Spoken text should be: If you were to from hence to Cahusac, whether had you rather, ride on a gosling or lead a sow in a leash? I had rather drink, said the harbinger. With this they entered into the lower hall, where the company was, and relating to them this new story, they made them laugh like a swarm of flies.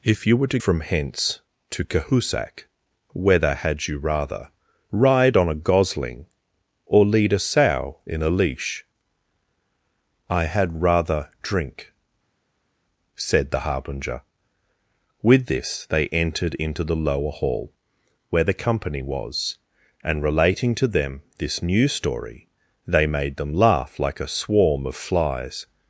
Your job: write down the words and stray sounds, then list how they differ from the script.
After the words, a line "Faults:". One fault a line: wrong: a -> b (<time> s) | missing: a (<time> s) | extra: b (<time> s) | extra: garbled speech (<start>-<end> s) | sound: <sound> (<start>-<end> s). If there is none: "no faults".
If you were to from hence to Cahusac, whether had you rather, ride on a gosling or lead a sow in a leash? I had rather drink, said the harbinger. With this they entered into the lower hall, where the company was, and relating to them this new story, they made them laugh like a swarm of flies.
Faults:
no faults